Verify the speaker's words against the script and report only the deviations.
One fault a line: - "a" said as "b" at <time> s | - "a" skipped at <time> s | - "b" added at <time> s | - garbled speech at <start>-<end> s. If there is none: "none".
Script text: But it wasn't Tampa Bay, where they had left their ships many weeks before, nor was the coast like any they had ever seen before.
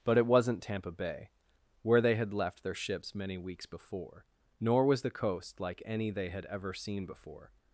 none